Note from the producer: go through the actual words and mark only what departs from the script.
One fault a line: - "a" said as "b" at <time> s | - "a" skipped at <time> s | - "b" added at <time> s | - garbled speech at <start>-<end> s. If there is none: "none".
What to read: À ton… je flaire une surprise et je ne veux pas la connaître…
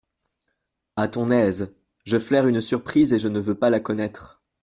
- "aise" added at 1.3 s